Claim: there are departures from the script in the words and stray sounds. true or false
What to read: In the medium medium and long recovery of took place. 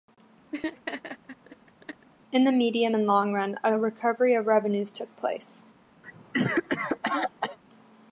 true